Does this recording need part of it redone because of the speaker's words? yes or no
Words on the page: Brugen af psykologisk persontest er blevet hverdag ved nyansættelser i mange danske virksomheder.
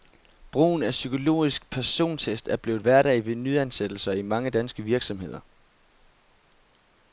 no